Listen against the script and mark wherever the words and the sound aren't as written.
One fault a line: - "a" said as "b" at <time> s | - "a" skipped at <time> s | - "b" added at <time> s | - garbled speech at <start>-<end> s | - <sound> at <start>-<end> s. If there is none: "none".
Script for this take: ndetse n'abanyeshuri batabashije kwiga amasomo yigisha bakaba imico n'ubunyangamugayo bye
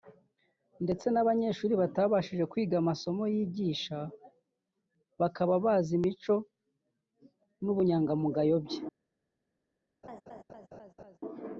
- "bazi" added at 5.7 s
- laugh at 10.0-11.2 s